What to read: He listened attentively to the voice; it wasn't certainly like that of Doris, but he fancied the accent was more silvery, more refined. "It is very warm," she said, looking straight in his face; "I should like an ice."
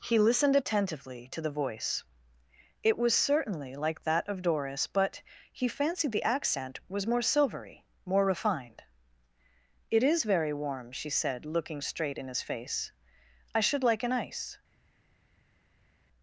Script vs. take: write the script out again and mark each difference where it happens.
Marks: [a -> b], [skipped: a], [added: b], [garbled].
He listened attentively to the voice; it [wasn't -> was] certainly like that of Doris, but he fancied the accent was more silvery, more refined. "It is very warm," she said, looking straight in his face; "I should like an ice."